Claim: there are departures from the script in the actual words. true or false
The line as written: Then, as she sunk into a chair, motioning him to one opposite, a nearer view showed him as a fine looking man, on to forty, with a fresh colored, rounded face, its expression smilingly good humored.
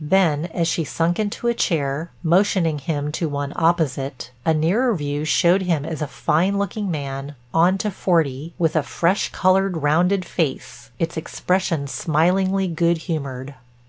false